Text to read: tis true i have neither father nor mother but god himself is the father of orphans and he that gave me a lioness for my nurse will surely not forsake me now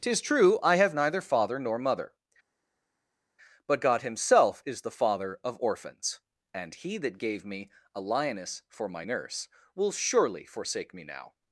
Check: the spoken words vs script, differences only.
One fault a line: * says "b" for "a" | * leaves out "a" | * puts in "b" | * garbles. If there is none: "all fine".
* leaves out "not"